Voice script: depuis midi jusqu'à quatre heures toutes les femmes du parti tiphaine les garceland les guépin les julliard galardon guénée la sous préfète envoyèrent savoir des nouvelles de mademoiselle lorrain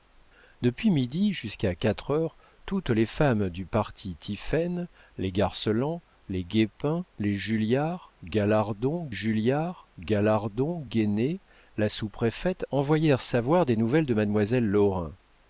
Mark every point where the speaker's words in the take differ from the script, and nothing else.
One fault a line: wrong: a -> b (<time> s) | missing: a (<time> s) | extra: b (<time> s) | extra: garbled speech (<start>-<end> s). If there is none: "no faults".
extra: julliard galardon (9.1 s)